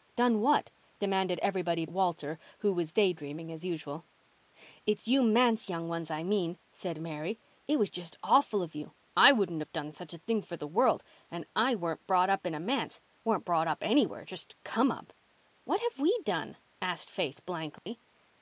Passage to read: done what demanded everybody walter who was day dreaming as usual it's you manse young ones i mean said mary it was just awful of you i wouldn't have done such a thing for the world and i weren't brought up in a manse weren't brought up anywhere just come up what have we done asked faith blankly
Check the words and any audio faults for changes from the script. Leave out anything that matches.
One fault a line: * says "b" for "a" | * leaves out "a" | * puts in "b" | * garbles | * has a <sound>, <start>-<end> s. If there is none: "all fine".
* has a dropout, 17.8-17.9 s